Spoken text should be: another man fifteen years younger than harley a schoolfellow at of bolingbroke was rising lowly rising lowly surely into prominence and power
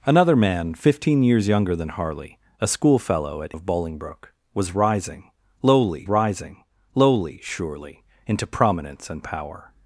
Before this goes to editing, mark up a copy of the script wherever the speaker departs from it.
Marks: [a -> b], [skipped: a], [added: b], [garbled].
another man fifteen years younger than harley a schoolfellow at of bolingbroke was rising lowly rising lowly surely into prominence and power